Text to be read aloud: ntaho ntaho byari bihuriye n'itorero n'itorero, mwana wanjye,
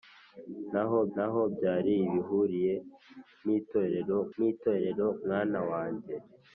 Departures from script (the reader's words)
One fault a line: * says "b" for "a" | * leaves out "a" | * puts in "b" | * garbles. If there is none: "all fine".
all fine